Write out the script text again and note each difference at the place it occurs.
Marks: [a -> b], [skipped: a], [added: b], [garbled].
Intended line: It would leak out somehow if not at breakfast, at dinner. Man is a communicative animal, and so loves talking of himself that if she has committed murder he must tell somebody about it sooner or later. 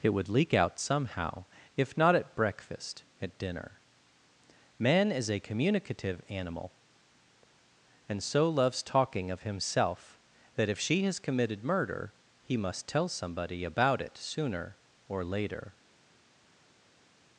It would leak out somehow if not at breakfast, at dinner. Man is a communicative animal, and so loves talking of himself that if she has committed murder he must tell somebody about it sooner or later.